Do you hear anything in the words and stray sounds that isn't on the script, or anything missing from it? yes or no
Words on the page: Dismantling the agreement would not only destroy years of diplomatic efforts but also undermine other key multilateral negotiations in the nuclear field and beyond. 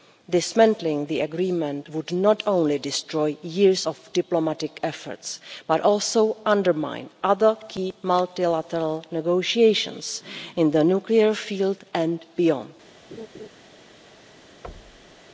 yes